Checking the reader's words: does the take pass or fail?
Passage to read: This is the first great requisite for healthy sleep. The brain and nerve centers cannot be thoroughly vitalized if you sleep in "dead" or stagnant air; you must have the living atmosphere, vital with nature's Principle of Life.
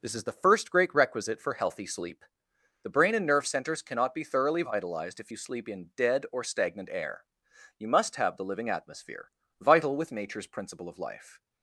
pass